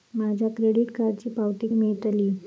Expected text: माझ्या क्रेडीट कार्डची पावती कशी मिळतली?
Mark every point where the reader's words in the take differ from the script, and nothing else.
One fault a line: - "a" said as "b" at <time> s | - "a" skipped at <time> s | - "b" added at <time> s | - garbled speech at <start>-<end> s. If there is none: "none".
- "कशी" skipped at 1.7 s